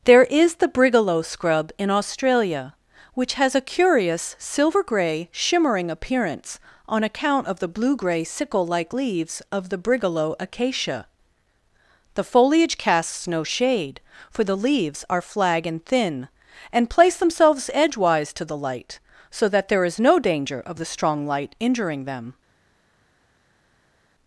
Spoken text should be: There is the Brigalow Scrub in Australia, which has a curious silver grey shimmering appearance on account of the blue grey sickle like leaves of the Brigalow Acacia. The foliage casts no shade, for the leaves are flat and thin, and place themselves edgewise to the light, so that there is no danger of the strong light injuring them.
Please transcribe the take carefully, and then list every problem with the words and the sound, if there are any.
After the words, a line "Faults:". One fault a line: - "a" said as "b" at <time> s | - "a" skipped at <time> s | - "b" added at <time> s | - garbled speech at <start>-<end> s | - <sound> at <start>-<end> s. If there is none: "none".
There is the Brigalow Scrub in Australia, which has a curious silver grey shimmering appearance on account of the blue grey sickle like leaves of the Brigalow Acacia. The foliage casts no shade, for the leaves are flag and thin, and place themselves edgewise to the light, so that there is no danger of the strong light injuring them.
Faults:
- "flat" said as "flag" at 15.2 s